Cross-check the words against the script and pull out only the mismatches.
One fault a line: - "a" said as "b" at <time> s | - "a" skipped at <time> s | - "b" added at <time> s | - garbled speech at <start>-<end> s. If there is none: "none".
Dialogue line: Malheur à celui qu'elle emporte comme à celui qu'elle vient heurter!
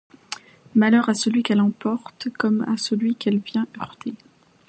none